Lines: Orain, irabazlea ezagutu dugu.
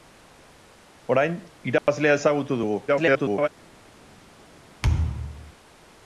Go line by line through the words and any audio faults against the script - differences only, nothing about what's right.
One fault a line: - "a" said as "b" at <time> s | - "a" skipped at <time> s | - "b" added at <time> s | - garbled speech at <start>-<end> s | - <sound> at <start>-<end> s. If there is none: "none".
- dropout at 1.8-1.9 s
- garbled speech at 2.9-3.5 s
- thud at 4.8-5.5 s